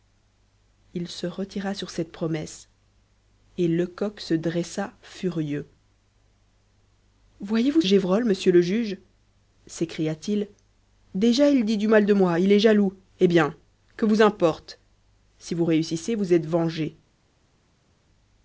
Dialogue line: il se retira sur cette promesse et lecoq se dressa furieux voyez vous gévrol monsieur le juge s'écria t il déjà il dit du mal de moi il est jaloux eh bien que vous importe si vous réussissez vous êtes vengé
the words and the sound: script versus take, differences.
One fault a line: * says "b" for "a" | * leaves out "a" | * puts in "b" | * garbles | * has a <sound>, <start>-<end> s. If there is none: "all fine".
all fine